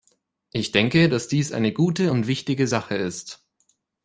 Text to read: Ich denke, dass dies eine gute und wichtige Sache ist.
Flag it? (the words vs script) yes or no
no